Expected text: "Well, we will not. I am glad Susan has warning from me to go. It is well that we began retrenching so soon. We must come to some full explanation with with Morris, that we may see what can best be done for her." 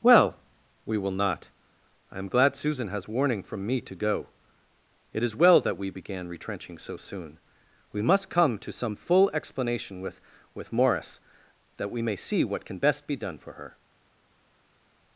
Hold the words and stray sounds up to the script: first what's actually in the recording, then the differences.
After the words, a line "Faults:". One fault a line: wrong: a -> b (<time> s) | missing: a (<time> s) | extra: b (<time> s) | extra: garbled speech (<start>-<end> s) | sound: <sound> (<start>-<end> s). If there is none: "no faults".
"Well, we will not. I am glad Susan has warning from me to go. It is well that we began retrenching so soon. We must come to some full explanation with with Morris, that we may see what can best be done for her."
Faults:
no faults